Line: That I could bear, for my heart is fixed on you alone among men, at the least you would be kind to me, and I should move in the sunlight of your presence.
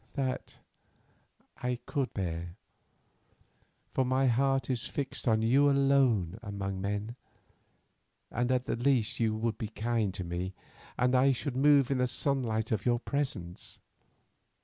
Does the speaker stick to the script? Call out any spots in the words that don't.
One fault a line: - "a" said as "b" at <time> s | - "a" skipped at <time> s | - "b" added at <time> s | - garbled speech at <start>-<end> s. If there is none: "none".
- "and" added at 8.3 s